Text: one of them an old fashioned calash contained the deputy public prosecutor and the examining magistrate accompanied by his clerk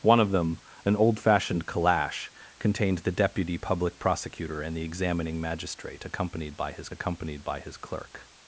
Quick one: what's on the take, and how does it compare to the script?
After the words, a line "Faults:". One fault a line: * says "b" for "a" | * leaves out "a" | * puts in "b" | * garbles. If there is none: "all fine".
one of them an old fashioned calash contained the deputy public prosecutor and the examining magistrate accompanied by his accompanied by his clerk
Faults:
* puts in "accompanied by his"